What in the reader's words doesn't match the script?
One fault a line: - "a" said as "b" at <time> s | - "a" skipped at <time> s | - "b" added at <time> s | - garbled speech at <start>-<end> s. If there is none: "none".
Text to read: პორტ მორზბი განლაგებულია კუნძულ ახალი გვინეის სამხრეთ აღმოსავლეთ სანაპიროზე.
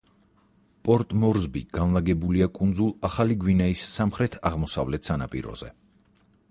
none